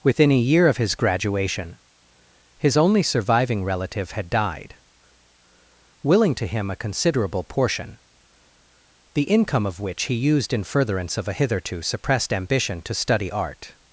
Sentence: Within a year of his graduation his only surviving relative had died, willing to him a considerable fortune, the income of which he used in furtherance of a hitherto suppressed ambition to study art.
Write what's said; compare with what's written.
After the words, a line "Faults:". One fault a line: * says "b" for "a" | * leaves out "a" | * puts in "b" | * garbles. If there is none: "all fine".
Within a year of his graduation his only surviving relative had died, willing to him a considerable portion, the income of which he used in furtherance of a hitherto suppressed ambition to study art.
Faults:
* says "portion" for "fortune"